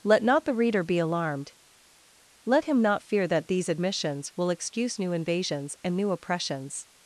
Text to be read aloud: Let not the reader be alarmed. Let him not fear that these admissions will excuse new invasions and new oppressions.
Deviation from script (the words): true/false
false